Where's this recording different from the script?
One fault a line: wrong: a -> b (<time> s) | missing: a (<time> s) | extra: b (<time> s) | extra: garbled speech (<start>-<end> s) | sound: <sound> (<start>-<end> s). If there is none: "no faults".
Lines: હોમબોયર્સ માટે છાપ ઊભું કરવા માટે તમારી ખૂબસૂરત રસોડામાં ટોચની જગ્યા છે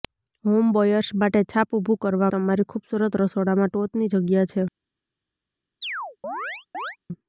missing: માટે (2.3 s)
sound: chirp (5.8-7.0 s)